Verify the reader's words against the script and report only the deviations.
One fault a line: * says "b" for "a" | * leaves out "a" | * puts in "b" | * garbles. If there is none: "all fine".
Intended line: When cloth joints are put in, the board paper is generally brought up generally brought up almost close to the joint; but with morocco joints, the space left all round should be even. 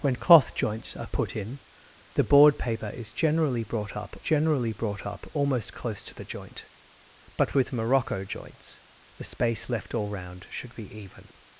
all fine